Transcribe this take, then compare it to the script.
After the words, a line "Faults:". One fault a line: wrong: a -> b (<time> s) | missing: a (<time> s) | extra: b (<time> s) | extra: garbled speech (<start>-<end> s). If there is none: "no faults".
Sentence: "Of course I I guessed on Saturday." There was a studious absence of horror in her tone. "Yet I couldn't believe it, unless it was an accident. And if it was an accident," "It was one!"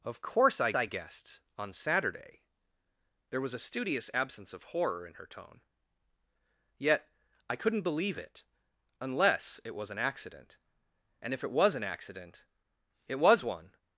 "Of course I I guessed on Saturday." There was a studious absence of horror in her tone. "Yet I couldn't believe it, unless it was an accident. And if it was an accident," "It was one!"
Faults:
no faults